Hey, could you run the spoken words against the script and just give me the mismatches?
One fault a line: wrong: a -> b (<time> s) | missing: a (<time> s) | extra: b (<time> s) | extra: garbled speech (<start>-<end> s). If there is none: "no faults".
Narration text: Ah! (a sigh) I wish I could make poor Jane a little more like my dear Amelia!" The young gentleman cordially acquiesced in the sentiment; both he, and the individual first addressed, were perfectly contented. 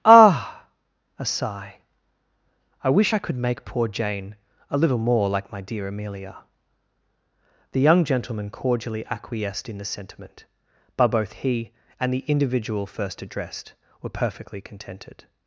extra: but (11.0 s)